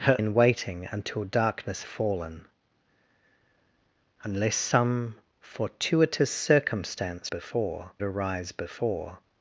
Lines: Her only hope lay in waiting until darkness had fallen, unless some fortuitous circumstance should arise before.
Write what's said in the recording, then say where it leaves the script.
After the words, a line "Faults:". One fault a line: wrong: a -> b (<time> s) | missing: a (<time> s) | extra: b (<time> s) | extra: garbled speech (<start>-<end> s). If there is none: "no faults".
Her in waiting until darkness fallen, unless some fortuitous circumstance before arise before.
Faults:
missing: only hope lay (0.2 s)
missing: had (1.8 s)
wrong: should -> before (7.2 s)